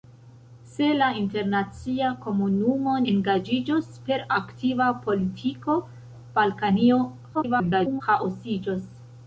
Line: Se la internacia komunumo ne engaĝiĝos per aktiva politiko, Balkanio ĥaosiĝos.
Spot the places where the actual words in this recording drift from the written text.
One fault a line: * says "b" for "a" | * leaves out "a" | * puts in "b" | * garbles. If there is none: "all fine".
* leaves out "ne"
* garbles